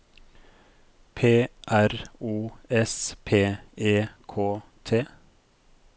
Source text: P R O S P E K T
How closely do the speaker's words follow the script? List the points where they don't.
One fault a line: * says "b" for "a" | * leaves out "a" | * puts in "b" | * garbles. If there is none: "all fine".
all fine